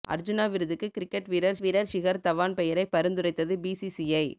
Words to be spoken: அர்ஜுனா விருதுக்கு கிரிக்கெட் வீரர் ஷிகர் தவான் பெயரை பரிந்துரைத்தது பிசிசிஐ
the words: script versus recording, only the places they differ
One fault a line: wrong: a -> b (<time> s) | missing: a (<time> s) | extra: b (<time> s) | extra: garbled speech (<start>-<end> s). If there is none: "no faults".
extra: வீரர் (1.6 s)